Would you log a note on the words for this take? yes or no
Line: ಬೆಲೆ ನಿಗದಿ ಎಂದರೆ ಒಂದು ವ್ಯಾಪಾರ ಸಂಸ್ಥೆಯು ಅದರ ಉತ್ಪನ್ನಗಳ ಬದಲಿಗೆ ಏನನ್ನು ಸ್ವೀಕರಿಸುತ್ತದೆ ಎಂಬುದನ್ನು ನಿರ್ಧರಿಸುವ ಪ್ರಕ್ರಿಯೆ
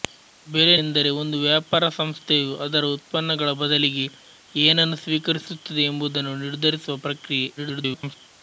yes